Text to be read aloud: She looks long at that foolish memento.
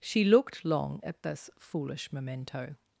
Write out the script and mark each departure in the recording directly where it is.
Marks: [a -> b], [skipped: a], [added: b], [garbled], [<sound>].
She [looks -> looked] long at [that -> this] foolish memento.